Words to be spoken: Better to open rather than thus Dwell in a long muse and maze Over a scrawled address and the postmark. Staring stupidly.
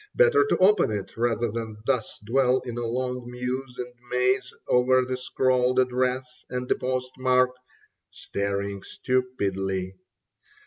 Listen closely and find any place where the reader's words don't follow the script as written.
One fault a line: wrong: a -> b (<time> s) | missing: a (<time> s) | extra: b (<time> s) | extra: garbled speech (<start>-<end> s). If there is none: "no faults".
extra: it (0.9 s)
wrong: a -> the (5.0 s)